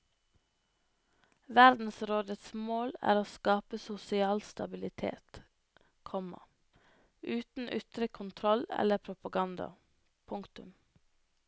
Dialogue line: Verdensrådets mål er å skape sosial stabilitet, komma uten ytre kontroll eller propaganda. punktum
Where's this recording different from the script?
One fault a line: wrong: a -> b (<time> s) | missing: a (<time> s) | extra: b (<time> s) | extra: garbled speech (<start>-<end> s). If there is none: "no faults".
no faults